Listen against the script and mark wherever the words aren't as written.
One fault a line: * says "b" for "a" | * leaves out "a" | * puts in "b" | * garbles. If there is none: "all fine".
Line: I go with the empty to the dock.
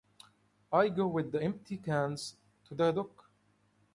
* puts in "cans"